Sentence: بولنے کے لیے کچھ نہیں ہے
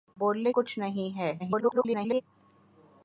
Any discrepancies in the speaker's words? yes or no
yes